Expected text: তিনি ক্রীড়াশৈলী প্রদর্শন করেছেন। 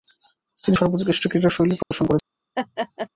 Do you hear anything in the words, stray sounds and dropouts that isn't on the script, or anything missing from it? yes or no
yes